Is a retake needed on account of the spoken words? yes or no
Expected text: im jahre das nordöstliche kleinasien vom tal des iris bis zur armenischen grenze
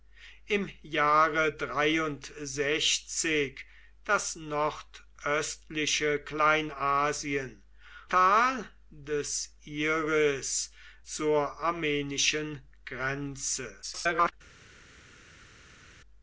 yes